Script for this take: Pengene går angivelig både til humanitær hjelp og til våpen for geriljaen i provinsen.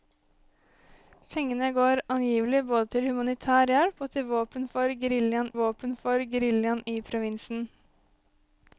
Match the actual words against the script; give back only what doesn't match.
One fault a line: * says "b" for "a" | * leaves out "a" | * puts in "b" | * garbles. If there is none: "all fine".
* puts in "våpen for geriljaen"